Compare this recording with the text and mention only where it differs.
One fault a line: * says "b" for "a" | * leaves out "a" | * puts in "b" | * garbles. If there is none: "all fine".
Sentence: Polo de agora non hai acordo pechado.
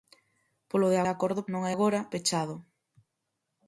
* says "acordo" for "agora"
* says "agora" for "acordo"